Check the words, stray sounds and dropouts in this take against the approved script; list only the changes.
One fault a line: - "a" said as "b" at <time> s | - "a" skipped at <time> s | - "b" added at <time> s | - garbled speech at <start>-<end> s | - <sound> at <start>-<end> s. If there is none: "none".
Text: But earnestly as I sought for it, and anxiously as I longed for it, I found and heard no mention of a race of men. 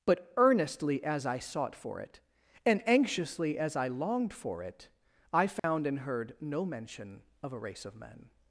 - dropout at 5.6-5.6 s